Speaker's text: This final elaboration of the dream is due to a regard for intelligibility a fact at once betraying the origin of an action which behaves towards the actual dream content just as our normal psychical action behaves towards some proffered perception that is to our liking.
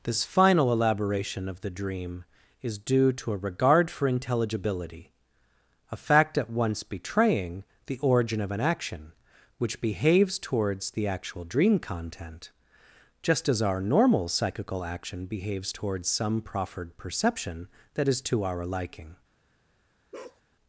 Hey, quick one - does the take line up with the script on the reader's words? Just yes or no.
yes